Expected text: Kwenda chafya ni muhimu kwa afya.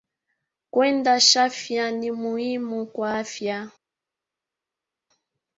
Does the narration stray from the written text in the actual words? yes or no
no